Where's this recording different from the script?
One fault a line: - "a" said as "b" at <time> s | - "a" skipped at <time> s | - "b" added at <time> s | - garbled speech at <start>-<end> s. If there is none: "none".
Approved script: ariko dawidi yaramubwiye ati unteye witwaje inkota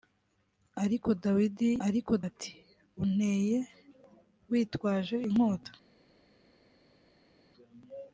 - "yaramubwiye" said as "ariko" at 1.9 s